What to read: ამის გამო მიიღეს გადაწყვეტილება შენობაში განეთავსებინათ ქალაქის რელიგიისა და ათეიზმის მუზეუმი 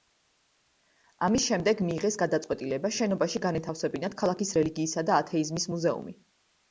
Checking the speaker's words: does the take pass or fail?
fail